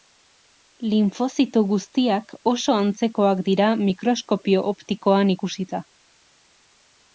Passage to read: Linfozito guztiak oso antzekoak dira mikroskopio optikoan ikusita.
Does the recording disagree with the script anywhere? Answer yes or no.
no